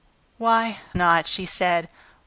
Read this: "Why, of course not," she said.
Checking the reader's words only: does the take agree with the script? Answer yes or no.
no